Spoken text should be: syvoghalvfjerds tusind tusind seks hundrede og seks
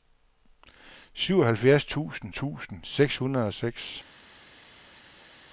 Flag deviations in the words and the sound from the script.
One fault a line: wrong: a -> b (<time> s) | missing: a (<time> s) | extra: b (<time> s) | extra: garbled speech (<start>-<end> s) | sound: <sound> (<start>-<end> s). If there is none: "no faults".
no faults